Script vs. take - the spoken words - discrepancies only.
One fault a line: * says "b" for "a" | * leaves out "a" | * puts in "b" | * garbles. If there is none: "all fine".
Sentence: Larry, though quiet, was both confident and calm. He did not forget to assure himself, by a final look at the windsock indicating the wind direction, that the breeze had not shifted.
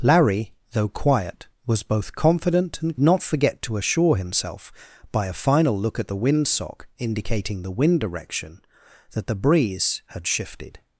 * leaves out "calm He did"
* leaves out "not"